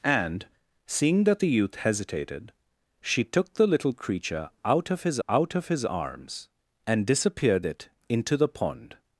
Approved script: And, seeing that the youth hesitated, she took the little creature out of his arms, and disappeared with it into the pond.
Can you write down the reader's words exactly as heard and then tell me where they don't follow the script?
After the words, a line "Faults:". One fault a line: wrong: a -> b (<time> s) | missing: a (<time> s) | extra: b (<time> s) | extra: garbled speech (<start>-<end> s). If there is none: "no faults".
And, seeing that the youth hesitated, she took the little creature out of his out of his arms, and disappeared it into the pond.
Faults:
extra: out of his (5.3 s)
missing: with (7.7 s)